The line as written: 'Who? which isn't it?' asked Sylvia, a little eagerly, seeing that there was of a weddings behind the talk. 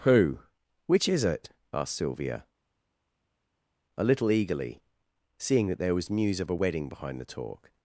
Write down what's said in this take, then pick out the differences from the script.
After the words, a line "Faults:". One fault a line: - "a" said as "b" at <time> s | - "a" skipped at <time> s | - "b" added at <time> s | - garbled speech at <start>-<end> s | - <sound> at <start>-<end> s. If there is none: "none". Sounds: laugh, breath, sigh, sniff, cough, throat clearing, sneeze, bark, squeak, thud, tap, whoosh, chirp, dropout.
'Who? which is it?' asked Sylvia, a little eagerly, seeing that there was news of a wedding behind the talk.
Faults:
- "isn't" said as "is" at 1.1 s
- "news" added at 6.1 s
- "weddings" said as "wedding" at 6.5 s